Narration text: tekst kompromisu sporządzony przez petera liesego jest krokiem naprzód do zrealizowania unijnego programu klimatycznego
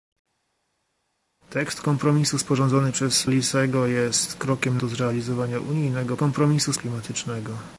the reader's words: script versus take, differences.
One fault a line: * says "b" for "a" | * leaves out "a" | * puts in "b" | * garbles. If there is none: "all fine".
* leaves out "petera"
* leaves out "naprzód"
* says "kompromisu" for "programu"